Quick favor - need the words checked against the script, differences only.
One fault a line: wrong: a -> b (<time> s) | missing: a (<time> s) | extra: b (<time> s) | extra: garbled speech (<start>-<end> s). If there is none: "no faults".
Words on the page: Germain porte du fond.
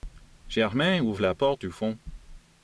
extra: ouvre la (1.0 s)